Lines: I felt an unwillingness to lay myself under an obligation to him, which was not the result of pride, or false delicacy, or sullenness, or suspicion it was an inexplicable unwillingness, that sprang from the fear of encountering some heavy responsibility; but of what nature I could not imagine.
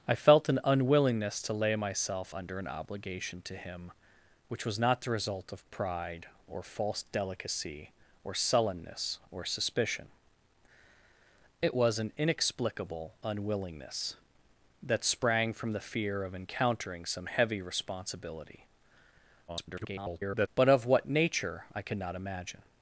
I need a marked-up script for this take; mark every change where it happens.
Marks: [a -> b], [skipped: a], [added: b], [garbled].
I felt an unwillingness to lay myself under an obligation to him, which was not the result of pride, or false delicacy, or sullenness, or suspicion it was an inexplicable unwillingness, that sprang from the fear of encountering some heavy responsibility; [garbled] but of what nature I could not imagine.